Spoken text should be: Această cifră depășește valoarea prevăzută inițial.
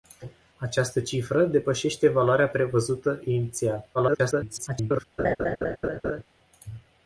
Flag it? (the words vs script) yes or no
yes